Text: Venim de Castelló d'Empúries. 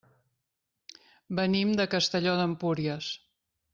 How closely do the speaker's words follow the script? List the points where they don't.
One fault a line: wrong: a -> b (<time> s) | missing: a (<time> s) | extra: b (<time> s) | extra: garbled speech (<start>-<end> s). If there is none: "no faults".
no faults